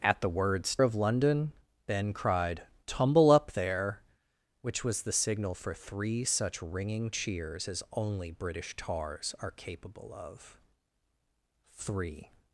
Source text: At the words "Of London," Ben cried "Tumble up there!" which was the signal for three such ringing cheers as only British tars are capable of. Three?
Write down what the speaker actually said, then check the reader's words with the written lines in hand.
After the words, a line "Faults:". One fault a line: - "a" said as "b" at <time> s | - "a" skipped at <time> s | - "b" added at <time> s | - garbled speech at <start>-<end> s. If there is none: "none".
At the words "Of London," Ben cried "Tumble up there!" which was the signal for three such ringing cheers as only British tars are capable of. Three?
Faults:
none